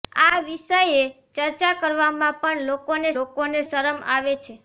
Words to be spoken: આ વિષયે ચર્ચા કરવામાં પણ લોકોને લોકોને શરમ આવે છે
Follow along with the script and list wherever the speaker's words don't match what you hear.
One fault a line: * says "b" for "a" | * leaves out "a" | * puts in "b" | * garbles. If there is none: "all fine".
all fine